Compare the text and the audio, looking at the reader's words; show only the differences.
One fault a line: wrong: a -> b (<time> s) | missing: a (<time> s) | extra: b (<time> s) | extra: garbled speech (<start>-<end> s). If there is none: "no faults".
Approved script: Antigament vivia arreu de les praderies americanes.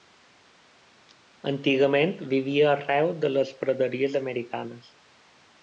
no faults